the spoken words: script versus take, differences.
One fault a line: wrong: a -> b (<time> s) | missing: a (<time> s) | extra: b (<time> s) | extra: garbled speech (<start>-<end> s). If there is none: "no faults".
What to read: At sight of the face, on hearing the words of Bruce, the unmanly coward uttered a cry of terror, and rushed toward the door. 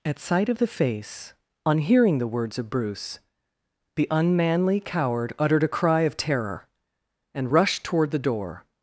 no faults